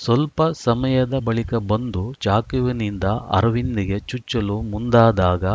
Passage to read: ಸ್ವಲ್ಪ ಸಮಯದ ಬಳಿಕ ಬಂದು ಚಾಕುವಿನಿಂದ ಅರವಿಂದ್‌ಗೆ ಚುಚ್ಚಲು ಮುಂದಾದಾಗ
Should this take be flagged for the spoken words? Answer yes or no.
no